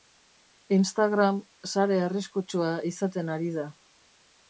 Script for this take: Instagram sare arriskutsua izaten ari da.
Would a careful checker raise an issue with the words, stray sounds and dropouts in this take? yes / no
no